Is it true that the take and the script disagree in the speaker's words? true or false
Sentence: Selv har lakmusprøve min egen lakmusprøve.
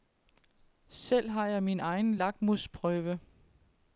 true